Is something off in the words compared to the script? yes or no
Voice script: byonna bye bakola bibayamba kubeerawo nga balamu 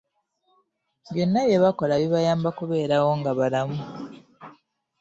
no